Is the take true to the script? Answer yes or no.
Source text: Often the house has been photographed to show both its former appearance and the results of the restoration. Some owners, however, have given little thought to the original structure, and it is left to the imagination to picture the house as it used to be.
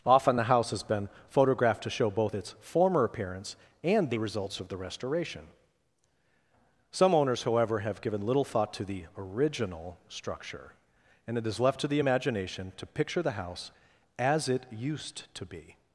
yes